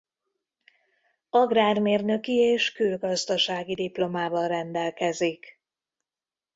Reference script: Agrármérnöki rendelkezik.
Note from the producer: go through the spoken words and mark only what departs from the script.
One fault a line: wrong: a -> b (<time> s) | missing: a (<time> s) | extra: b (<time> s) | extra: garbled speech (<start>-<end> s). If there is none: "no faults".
extra: és külgazdasági diplomával (2.3 s)